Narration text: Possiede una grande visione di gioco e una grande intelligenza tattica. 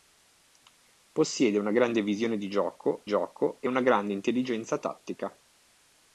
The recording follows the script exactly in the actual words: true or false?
false